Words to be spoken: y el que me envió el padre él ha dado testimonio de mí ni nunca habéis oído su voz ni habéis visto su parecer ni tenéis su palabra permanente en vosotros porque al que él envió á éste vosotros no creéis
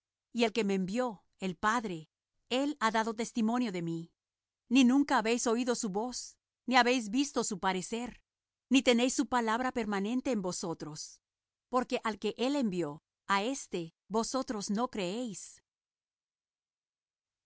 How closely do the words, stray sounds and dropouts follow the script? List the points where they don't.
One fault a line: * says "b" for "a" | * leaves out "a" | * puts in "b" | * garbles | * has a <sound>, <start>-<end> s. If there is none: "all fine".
all fine